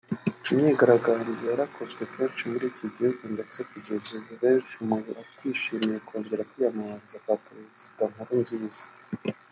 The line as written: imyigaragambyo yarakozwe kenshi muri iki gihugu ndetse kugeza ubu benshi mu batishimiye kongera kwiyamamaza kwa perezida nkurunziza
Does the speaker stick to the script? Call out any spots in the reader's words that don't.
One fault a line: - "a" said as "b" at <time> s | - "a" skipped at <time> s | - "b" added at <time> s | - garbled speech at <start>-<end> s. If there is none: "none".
none